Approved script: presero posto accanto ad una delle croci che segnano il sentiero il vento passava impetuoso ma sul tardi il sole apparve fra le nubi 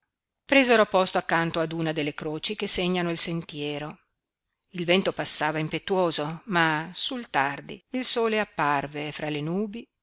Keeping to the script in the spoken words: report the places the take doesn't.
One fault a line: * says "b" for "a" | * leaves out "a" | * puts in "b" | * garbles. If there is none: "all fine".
all fine